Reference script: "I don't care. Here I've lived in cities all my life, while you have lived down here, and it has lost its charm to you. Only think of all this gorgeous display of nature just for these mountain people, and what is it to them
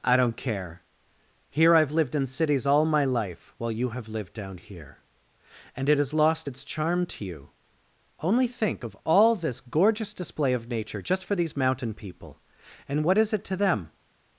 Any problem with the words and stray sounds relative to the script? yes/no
no